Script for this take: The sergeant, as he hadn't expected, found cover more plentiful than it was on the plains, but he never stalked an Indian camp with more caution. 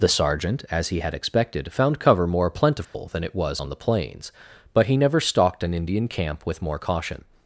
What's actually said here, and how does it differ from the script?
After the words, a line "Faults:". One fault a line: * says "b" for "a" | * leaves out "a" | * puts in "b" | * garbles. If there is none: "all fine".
The sergeant, as he had expected, found cover more plentiful than it was on the plains, but he never stalked an Indian camp with more caution.
Faults:
* says "had" for "hadn't"